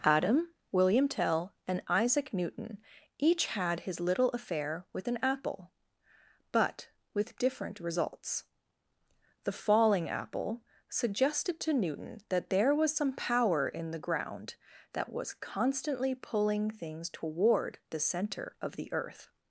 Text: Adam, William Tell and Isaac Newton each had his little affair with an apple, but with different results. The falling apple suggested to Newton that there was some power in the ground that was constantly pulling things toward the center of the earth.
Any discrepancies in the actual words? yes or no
no